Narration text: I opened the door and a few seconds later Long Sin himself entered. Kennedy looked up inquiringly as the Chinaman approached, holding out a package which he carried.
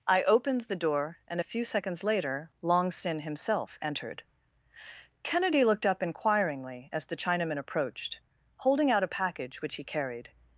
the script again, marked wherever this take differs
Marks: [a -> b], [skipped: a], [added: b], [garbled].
I opened the door and a few seconds later Long Sin himself entered. Kennedy looked up inquiringly as the Chinaman approached, holding out a package which he carried.